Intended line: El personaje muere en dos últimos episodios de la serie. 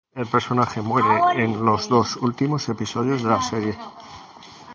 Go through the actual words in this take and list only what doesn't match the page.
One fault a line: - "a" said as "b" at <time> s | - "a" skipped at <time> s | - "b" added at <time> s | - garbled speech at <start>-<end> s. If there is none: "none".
- "los" added at 1.6 s